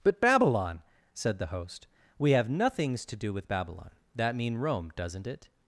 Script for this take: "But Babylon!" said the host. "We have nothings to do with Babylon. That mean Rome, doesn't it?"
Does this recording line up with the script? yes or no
yes